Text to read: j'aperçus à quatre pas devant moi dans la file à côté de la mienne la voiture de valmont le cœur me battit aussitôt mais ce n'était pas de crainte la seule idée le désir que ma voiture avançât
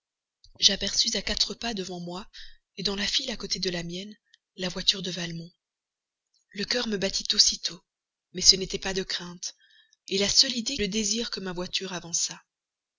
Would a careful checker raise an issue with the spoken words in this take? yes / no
no